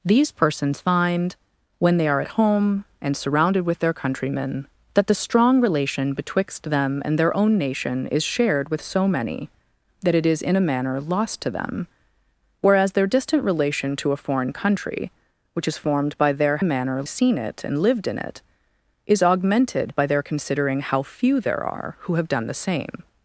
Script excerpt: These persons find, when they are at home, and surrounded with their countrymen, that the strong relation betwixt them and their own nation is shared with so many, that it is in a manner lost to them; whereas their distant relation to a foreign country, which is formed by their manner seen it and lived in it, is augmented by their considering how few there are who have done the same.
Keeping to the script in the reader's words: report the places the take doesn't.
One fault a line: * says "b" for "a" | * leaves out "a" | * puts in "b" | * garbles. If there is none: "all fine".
all fine